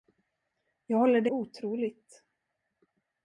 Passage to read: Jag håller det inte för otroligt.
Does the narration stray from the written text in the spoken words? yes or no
yes